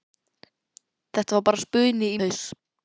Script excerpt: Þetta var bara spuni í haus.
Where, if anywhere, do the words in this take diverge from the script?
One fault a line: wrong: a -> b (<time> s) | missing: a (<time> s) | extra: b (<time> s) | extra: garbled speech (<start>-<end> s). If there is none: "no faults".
no faults